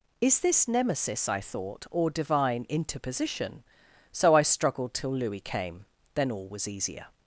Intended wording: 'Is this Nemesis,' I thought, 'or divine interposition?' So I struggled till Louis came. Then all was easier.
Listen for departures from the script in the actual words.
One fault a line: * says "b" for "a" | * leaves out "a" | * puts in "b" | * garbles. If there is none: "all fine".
all fine